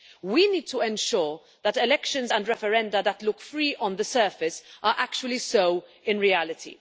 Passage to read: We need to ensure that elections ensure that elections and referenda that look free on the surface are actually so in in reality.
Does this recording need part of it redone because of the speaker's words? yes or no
yes